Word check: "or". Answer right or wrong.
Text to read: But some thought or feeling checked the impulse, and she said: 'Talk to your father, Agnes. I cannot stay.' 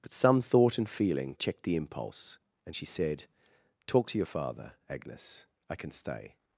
wrong